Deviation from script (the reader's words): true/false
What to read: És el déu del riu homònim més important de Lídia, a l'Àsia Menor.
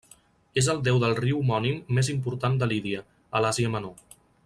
false